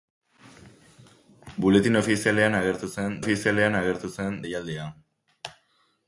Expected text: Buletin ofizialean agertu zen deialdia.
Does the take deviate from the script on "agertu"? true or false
false